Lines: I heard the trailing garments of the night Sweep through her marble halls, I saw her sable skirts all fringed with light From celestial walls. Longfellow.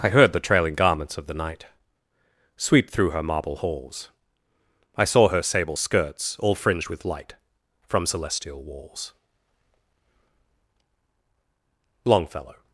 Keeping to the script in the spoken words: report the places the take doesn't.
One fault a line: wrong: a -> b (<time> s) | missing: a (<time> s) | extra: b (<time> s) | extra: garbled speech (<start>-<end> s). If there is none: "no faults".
no faults